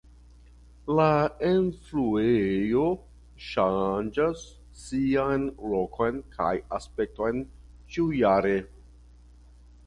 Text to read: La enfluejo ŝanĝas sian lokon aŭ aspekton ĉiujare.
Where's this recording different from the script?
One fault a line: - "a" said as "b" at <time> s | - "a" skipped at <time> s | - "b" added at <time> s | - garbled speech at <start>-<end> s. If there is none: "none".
- "aŭ" said as "kaj" at 6.4 s